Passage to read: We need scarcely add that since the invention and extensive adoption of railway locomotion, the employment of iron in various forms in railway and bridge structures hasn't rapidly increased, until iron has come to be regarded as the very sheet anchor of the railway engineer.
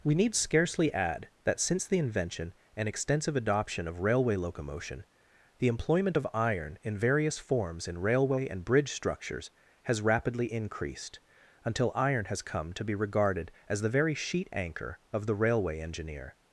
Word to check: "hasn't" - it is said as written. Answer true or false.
false